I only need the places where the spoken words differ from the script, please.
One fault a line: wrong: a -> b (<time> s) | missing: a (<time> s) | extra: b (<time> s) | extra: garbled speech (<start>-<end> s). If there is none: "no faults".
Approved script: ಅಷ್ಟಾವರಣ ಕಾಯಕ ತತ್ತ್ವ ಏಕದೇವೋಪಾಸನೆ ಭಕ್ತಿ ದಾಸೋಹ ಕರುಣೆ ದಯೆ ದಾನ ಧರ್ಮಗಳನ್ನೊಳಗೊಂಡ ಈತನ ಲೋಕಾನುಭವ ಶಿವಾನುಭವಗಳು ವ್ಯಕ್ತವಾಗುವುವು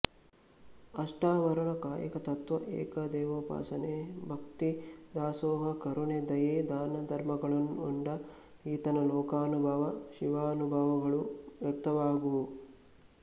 no faults